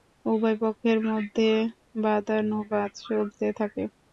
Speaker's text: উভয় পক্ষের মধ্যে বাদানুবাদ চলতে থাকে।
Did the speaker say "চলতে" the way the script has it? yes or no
yes